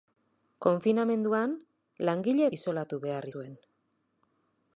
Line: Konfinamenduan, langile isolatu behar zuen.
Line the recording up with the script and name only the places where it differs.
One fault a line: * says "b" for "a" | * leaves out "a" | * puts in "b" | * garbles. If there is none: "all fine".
all fine